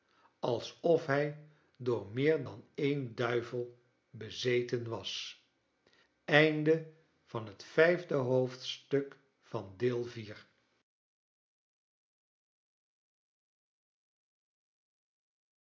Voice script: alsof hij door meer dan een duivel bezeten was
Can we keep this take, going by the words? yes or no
yes